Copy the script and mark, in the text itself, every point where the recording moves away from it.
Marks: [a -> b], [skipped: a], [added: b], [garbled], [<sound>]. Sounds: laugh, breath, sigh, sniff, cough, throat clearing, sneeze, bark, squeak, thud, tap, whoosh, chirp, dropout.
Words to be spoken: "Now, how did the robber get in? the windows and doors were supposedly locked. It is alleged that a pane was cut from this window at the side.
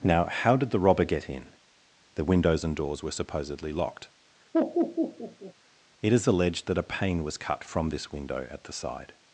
"Now, how did the robber get in? the windows and doors were supposedly locked. [laugh] It is alleged that a pane was cut from this window at the side.